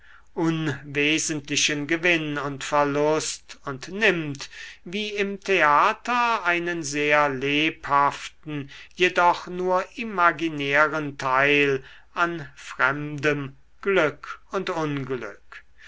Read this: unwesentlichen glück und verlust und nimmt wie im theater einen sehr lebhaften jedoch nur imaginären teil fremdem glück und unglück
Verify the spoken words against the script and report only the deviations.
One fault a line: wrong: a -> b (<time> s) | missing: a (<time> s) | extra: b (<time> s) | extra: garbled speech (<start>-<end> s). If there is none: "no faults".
wrong: glück -> gewinn (1.9 s)
extra: an (12.1 s)